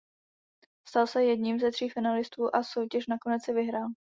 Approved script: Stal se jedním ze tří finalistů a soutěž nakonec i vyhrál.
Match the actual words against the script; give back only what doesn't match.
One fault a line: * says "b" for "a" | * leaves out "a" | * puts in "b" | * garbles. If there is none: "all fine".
all fine